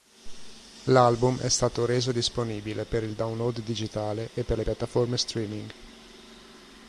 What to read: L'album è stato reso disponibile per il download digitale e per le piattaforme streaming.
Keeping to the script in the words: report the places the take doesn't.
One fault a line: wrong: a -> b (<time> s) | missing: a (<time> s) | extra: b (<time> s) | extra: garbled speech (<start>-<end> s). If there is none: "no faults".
no faults